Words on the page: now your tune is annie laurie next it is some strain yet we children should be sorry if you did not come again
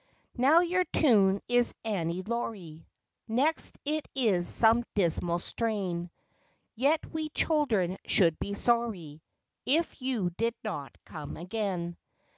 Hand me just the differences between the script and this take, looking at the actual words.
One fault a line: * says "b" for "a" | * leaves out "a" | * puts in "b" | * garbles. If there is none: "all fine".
* puts in "dismal"